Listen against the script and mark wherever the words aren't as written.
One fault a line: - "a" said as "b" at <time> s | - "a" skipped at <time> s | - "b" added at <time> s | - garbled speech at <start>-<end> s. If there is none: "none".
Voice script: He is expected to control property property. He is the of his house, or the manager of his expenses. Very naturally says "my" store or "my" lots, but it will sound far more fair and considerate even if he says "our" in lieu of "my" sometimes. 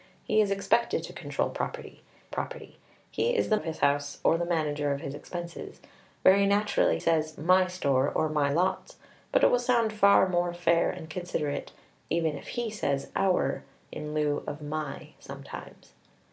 none